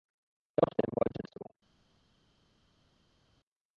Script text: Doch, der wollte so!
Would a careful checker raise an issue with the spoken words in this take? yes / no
no